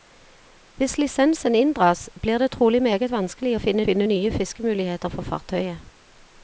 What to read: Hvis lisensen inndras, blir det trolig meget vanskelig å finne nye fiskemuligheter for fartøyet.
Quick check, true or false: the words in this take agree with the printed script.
false